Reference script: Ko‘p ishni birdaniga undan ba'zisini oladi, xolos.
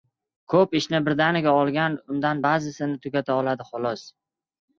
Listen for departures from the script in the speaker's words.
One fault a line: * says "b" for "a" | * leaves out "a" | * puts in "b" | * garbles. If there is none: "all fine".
* puts in "olgan"
* puts in "tugata"